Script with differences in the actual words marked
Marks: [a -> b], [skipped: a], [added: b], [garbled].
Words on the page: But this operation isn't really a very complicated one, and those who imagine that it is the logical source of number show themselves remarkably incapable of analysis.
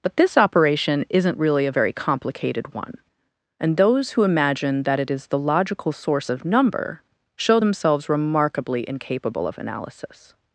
But this operation isn't really a very complicated one, and those who imagine that it is the logical source of number show themselves remarkably incapable of analysis.